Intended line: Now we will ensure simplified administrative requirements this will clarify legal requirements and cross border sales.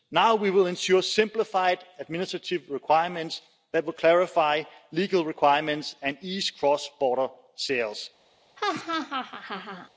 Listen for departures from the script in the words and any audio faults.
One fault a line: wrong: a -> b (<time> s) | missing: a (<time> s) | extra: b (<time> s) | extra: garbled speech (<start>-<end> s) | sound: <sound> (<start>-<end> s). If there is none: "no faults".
wrong: this -> that (3.7 s)
extra: ease (6.2 s)
sound: laugh (8.6-9.9 s)